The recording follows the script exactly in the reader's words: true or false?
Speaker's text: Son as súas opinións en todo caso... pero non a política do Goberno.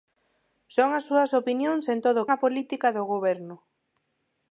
false